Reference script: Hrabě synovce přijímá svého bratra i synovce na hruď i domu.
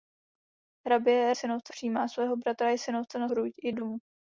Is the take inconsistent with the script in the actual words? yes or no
no